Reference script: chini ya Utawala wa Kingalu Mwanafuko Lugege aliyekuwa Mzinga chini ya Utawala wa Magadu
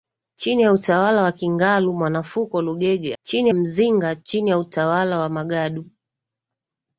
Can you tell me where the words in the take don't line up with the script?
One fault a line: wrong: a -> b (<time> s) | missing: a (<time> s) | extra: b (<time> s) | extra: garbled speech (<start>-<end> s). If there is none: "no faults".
wrong: aliyekuwa -> chini (3.2 s)